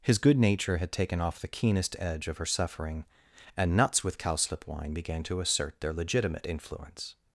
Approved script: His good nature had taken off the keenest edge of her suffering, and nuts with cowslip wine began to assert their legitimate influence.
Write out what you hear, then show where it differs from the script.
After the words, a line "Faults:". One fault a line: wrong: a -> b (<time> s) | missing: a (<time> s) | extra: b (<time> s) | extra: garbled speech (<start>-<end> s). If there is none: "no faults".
His good nature had taken off the keenest edge of her suffering, and nuts with cowslip wine began to assert their legitimate influence.
Faults:
no faults